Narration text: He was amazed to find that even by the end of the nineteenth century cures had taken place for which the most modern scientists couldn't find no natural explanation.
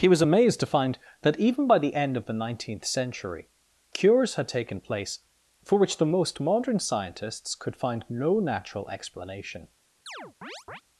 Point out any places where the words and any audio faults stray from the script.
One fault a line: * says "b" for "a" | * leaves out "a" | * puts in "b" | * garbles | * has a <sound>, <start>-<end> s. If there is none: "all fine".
* says "could" for "couldn't"
* has a chirp, 10.1-10.8 s